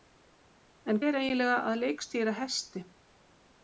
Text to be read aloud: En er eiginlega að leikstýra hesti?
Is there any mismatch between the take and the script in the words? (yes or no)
no